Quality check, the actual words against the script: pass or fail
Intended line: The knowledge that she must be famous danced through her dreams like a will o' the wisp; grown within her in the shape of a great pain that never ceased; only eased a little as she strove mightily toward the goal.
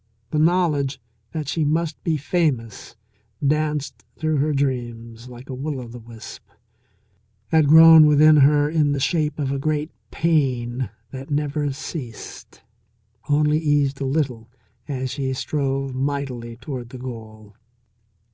fail